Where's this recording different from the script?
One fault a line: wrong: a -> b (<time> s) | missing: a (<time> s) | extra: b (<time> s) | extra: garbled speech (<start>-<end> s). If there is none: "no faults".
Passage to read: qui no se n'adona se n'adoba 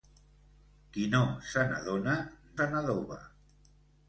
no faults